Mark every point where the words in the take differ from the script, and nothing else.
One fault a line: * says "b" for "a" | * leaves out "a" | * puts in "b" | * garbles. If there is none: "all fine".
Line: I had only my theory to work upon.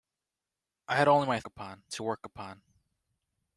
* says "upon" for "theory"